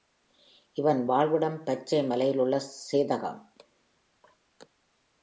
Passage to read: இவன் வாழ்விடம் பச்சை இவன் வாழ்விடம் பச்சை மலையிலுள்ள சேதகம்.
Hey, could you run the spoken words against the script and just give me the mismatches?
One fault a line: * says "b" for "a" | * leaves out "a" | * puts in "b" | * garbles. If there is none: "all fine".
* leaves out "இவன் வாழ்விடம் பச்சை"